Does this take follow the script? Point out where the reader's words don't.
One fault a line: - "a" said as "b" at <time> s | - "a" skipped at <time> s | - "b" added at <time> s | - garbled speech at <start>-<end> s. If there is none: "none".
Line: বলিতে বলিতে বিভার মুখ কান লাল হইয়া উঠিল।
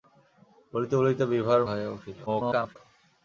- "মুখ কান লাল" skipped at 1.6 s
- garbled speech at 2.3-2.8 s